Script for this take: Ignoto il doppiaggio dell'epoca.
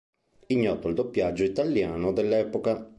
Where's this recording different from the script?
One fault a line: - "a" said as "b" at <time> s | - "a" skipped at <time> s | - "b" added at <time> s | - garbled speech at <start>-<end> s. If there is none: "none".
- "italiano" added at 1.4 s